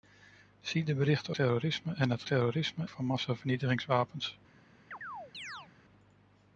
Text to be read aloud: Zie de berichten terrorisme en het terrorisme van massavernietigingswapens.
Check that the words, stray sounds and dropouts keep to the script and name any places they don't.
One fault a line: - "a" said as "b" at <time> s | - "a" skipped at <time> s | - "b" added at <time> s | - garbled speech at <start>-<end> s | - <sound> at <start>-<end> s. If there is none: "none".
- chirp at 4.9-5.7 s